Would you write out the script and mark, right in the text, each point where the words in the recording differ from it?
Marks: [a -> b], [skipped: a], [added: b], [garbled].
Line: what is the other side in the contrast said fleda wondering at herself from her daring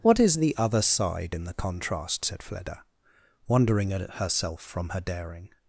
what is the other side in the contrast said fleda wondering at herself from her daring